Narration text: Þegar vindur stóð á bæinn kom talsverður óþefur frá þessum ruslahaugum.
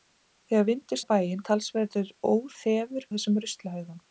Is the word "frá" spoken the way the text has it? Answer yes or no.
no